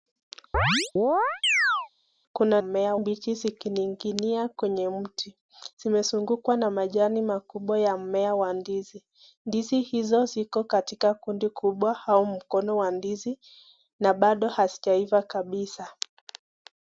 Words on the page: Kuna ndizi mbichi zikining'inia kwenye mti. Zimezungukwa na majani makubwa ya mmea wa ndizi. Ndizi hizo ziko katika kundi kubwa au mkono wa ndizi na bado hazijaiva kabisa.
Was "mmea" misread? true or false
false